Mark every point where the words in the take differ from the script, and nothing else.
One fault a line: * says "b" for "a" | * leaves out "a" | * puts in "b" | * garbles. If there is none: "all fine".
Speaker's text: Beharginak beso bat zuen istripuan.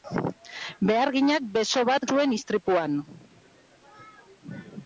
all fine